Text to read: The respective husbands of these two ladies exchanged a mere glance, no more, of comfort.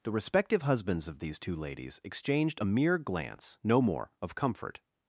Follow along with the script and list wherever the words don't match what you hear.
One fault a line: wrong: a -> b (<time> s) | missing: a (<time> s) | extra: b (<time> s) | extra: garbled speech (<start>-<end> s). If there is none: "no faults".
no faults